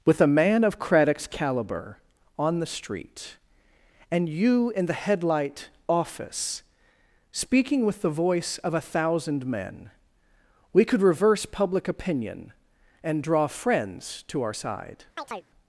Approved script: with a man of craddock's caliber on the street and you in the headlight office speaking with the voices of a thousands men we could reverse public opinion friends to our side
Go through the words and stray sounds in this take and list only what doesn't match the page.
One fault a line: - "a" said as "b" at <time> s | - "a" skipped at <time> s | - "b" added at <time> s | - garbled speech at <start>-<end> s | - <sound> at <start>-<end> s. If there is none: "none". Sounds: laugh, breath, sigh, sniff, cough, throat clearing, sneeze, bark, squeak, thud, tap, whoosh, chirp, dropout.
- "voices" said as "voice" at 8.1 s
- "thousands" said as "thousand" at 8.8 s
- "and draw" added at 13.0 s
- chirp at 15.2-15.5 s